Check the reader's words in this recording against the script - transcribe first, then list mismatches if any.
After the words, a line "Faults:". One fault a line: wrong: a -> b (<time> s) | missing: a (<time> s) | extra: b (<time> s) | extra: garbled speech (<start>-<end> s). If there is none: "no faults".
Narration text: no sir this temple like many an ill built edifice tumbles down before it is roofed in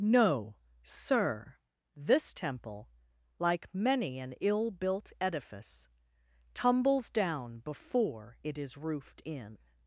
no sir this temple like many an ill built edifice tumbles down before it is roofed in
Faults:
no faults